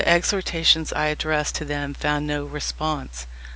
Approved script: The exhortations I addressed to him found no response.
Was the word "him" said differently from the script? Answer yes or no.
yes